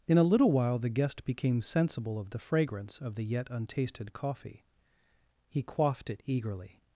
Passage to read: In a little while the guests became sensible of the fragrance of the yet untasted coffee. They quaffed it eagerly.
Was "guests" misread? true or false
true